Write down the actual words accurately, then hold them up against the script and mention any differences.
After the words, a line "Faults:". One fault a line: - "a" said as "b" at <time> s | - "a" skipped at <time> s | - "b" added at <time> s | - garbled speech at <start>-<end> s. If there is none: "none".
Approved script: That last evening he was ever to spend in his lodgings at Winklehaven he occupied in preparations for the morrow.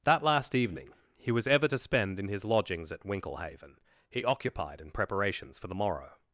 That last evening he was ever to spend in his lodgings at Winklehaven he occupied in preparations for the morrow.
Faults:
none